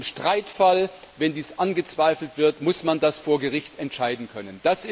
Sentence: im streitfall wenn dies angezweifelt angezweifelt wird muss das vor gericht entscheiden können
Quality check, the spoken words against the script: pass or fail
fail